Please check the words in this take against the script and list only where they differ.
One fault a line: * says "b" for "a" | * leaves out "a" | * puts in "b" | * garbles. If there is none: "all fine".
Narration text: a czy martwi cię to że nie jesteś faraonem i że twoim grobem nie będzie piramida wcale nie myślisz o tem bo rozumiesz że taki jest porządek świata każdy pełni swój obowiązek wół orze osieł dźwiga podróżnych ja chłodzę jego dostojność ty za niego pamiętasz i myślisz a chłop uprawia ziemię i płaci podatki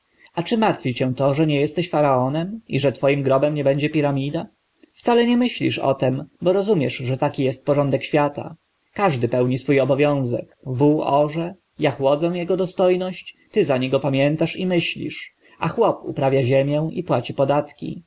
* leaves out "osieł dźwiga podróżnych"